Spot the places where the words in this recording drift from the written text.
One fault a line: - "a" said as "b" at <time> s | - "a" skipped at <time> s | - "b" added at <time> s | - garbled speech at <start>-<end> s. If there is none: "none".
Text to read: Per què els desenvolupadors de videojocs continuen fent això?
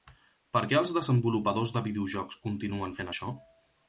none